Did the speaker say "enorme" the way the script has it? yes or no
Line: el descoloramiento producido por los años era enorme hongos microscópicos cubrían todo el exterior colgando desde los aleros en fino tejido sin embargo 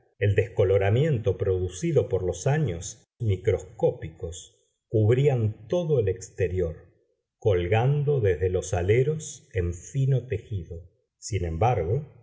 no